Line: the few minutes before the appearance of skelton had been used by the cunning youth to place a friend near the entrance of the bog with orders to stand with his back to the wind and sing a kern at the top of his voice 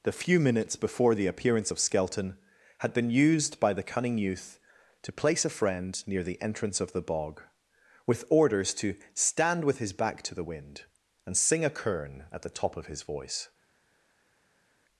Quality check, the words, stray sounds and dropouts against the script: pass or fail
pass